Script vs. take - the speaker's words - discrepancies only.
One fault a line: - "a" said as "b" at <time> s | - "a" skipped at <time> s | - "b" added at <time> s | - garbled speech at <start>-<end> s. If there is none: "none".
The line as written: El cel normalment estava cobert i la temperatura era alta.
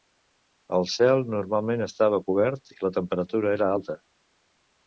none